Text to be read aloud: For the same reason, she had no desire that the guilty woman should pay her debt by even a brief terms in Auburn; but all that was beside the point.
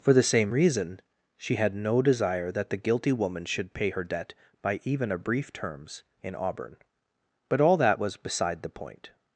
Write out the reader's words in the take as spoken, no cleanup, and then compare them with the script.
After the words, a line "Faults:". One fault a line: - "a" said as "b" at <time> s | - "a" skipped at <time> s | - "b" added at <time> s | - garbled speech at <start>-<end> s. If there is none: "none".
For the same reason, she had no desire that the guilty woman should pay her debt by even a brief terms in Auburn; but all that was beside the point.
Faults:
none